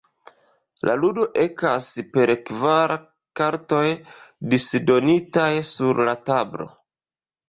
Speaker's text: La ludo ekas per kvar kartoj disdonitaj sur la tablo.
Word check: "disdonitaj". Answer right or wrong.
right